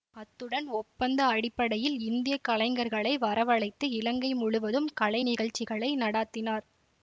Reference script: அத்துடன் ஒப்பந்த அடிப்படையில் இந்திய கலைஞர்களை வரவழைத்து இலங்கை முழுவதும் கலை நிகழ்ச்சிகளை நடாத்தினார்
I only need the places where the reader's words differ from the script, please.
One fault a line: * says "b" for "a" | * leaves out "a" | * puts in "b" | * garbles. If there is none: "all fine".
all fine